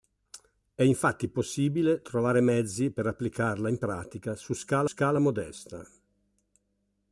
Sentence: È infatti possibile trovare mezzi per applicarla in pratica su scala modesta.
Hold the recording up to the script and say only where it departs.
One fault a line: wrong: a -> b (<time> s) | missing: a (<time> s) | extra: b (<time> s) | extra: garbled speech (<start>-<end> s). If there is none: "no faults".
extra: scala (4.8 s)